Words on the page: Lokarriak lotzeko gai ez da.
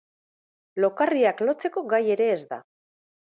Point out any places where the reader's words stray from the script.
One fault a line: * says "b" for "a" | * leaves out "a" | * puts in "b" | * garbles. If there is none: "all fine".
* puts in "ere"